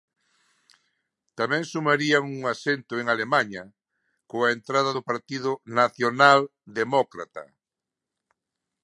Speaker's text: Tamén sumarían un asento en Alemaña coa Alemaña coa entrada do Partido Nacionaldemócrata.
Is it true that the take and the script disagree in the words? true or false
true